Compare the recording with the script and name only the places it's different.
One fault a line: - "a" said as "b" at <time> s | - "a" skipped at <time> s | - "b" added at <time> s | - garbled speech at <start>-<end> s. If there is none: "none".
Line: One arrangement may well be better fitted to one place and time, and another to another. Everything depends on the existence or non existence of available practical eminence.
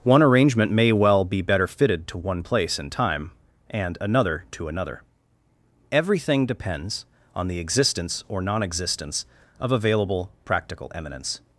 none